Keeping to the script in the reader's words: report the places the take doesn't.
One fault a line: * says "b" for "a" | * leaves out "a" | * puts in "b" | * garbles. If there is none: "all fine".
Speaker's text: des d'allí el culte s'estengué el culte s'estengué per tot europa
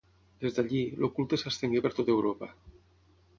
* leaves out "el culte s'estengué"